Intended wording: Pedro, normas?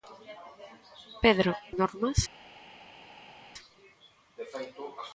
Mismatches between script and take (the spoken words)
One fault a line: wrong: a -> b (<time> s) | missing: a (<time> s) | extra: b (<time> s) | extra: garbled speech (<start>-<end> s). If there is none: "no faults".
no faults